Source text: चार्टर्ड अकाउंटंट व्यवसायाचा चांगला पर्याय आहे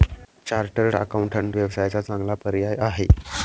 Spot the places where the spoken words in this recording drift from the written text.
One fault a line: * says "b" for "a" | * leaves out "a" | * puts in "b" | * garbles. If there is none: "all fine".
all fine